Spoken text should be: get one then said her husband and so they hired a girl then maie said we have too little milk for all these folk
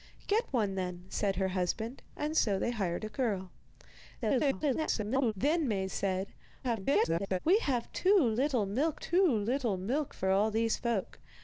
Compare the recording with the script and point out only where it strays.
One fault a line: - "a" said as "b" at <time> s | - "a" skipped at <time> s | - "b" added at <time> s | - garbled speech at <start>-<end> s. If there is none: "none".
- garbled speech at 4.2-5.3 s
- garbled speech at 6.6-7.4 s
- "too little milk" added at 9.0 s